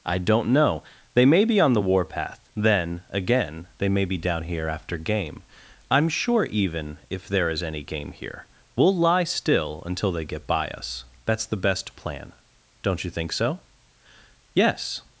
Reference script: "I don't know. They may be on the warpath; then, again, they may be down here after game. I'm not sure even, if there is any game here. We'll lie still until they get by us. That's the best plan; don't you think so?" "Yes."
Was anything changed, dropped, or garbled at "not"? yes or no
yes